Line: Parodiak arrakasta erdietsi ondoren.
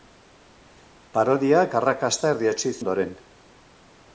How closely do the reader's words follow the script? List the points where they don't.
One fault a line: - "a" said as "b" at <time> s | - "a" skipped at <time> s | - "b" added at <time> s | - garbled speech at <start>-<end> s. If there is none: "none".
none